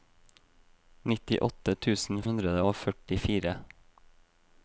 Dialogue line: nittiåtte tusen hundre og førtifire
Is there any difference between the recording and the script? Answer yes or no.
no